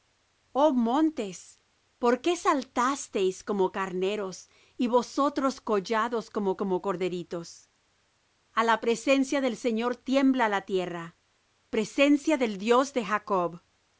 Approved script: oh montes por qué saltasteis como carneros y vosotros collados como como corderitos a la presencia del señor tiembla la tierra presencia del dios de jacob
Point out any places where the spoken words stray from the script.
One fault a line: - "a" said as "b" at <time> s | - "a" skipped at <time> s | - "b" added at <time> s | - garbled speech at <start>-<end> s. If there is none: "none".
none